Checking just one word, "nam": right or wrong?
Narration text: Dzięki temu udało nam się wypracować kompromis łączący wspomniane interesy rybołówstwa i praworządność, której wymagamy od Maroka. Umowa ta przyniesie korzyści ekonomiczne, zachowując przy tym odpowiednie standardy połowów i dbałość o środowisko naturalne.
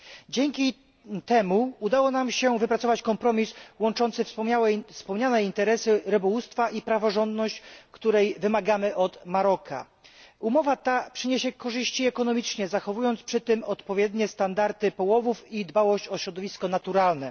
right